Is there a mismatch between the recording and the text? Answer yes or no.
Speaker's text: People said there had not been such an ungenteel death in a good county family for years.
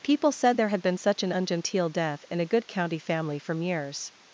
yes